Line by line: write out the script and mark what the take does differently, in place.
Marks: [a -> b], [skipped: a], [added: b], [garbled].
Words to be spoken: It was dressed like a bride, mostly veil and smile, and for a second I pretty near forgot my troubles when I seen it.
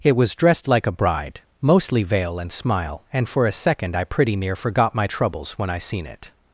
It was dressed like a bride, mostly veil and smile, and for a second I pretty near forgot my troubles when I seen it.